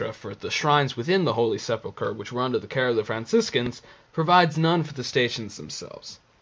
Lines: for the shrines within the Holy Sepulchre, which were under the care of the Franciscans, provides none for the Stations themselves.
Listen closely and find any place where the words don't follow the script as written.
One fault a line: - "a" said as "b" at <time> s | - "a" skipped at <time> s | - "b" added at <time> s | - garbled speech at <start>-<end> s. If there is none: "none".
none